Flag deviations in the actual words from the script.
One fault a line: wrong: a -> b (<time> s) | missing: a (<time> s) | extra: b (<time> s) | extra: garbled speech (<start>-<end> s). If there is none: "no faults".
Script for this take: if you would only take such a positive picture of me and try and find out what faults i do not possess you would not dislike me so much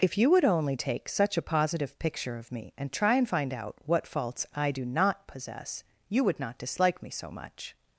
no faults